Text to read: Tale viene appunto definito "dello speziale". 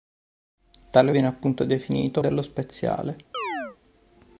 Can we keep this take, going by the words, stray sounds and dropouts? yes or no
no